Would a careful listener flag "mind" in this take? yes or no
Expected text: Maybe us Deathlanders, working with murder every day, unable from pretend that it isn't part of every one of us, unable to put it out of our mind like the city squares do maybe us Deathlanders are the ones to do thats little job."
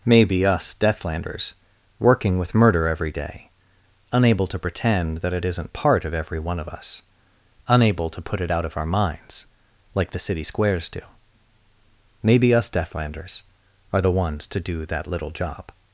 yes